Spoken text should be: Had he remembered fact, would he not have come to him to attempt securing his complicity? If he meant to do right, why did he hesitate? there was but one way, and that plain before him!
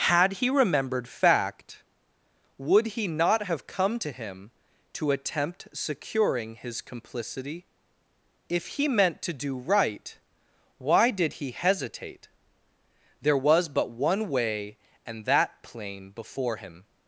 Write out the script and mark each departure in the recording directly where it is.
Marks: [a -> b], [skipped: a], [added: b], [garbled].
Had he remembered fact, would he not have come to him to attempt securing his complicity? If he meant to do right, why did he hesitate? there was but one way, and that plain before him!